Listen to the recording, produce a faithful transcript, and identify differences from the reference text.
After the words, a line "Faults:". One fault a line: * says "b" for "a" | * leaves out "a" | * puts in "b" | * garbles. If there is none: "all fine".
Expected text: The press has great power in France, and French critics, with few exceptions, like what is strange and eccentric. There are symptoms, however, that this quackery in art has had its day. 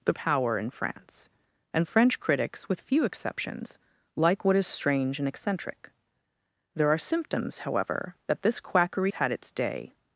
The power in France, and French critics, with few exceptions, like what is strange and eccentric. There are symptoms, however, that this quackery had its day.
Faults:
* leaves out "press has great"
* leaves out "in art has"